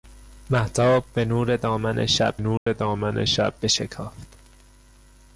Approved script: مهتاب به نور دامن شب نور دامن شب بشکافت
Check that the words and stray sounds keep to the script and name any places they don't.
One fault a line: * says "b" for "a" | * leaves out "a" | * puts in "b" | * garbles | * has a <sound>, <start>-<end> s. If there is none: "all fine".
* has a dropout, 2.6-2.7 s